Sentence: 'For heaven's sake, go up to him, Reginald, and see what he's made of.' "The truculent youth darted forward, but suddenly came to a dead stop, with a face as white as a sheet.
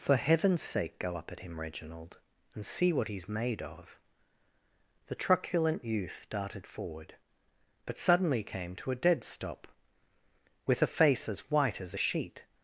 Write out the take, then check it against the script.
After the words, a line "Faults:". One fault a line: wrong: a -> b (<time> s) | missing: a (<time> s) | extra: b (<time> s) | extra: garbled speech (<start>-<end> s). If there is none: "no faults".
'For heaven's sake, go up at him, Reginald, and see what he's made of.' "The truculent youth darted forward, but suddenly came to a dead stop, with a face as white as a sheet.
Faults:
wrong: to -> at (1.3 s)